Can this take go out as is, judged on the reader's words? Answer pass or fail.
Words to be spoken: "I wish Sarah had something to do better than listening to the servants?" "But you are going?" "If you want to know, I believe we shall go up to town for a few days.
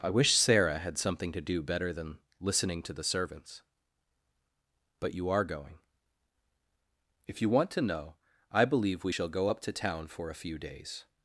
pass